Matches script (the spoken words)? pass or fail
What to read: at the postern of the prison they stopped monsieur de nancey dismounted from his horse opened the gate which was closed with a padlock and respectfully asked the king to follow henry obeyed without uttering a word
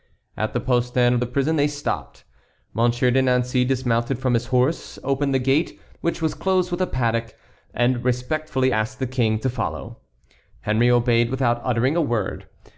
pass